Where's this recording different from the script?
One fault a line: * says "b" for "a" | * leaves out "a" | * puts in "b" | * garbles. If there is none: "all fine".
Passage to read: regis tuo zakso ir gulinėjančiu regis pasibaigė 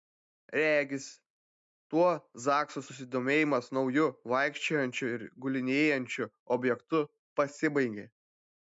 * puts in "susidomėjimas nauju vaikščiojančiu"
* says "objektu" for "regis"